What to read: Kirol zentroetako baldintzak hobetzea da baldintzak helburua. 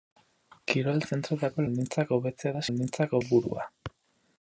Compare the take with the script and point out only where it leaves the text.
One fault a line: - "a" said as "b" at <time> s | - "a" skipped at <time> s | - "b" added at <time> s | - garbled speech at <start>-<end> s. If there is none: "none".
none